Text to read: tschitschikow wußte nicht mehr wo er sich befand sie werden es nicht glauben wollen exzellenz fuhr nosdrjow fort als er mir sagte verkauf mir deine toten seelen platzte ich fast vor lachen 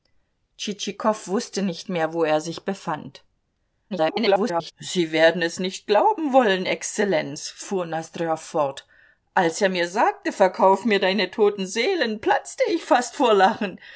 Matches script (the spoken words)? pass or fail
fail